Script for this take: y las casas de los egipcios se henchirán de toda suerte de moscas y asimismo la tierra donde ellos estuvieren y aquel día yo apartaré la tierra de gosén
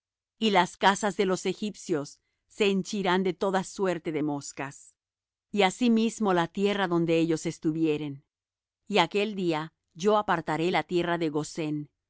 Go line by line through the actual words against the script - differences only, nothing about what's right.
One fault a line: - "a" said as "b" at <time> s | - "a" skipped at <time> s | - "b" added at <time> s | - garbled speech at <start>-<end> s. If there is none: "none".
none